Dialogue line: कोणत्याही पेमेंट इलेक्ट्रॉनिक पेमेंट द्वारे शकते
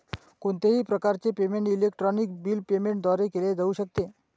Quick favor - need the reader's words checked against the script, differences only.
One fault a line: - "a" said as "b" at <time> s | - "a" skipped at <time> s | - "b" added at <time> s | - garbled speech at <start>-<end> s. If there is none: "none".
- "प्रकारचे" added at 0.8 s
- "बिल" added at 2.4 s
- "केले जाऊ" added at 3.3 s